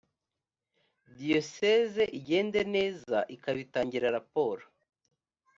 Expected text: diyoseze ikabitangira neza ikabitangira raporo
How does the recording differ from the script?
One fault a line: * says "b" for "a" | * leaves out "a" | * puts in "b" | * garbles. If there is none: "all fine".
* says "igende" for "ikabitangira"